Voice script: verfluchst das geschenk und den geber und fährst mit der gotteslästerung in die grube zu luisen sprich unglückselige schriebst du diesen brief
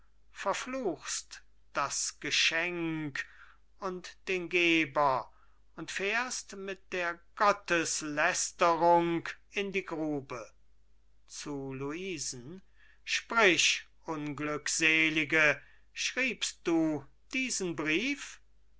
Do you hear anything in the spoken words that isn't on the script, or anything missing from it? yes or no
no